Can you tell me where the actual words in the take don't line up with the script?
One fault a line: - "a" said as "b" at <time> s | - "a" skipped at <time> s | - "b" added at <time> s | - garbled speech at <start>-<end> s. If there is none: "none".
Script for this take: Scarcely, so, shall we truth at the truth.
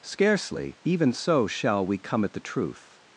- "even" added at 0.8 s
- "truth" said as "come" at 2.0 s